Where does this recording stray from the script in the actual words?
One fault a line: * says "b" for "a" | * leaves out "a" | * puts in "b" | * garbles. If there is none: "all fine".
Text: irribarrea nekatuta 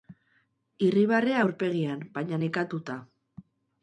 * puts in "aurpegian baina"